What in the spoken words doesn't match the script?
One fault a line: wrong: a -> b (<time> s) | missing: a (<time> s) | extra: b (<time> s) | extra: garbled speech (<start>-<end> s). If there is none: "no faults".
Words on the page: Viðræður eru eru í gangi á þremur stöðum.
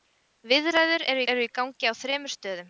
no faults